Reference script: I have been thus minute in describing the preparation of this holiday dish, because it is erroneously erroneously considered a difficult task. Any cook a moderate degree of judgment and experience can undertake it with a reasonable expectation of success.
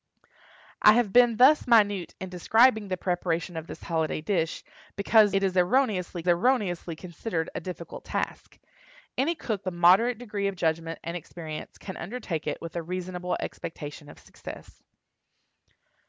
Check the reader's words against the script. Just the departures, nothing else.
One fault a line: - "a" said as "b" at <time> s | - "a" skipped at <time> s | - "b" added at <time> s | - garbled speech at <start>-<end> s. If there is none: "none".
none